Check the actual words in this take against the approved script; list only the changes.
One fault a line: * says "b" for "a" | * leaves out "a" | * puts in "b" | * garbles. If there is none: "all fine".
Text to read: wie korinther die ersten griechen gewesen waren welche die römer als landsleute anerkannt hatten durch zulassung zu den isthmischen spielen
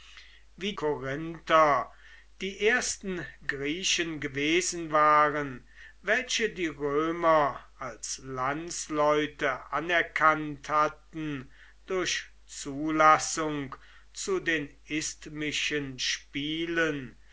all fine